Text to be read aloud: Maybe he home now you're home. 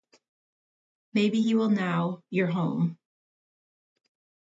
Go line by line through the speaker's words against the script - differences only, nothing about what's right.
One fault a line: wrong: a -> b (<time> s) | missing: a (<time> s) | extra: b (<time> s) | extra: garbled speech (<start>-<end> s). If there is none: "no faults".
wrong: home -> will (1.5 s)